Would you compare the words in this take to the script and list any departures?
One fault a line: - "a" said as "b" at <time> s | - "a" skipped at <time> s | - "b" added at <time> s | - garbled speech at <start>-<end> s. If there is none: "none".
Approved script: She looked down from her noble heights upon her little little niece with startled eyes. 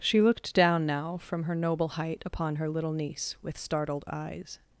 - "now" added at 0.9 s
- "heights" said as "height" at 1.9 s
- "little" skipped at 2.9 s